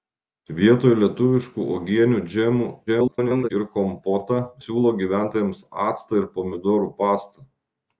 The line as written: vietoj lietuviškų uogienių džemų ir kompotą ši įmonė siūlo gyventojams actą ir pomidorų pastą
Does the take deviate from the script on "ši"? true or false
true